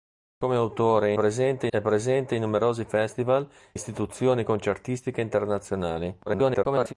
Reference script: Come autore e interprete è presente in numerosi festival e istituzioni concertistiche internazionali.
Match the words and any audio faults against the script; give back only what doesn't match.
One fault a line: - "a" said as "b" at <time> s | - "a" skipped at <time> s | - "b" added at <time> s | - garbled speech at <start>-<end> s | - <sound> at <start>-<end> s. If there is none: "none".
- "interprete" said as "presente" at 1.1 s
- "e" skipped at 3.5 s
- garbled speech at 6.3-6.9 s